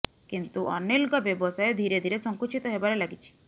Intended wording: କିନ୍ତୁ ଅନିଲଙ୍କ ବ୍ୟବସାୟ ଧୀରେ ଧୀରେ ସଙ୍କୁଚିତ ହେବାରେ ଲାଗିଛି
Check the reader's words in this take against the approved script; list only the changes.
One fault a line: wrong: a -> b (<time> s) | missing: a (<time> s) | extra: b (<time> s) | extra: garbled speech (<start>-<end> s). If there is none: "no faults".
no faults